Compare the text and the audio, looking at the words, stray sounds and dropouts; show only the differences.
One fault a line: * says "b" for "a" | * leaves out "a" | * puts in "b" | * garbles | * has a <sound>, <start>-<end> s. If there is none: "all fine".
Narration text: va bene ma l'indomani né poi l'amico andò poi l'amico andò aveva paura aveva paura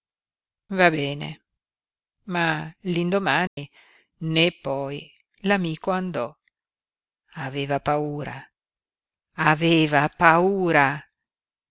* has a dropout, 3.5-3.6 s
* leaves out "poi l'amico andò"